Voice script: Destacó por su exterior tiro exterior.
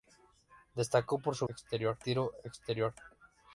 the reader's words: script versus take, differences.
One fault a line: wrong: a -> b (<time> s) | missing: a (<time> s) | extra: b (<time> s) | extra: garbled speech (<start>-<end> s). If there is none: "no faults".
no faults